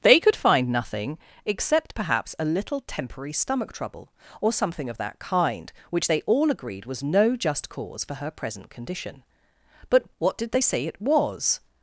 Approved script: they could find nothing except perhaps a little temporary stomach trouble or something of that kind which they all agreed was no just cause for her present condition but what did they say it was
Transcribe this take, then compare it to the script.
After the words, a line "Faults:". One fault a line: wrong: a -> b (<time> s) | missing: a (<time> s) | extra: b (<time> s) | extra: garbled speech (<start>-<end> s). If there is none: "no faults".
they could find nothing except perhaps a little temporary stomach trouble or something of that kind which they all agreed was no just cause for her present condition but what did they say it was
Faults:
no faults